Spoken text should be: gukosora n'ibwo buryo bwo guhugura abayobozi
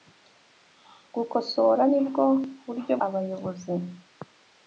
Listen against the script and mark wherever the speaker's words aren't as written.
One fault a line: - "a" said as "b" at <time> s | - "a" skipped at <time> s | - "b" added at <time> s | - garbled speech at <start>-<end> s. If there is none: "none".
- "bwo guhugura" skipped at 2.9 s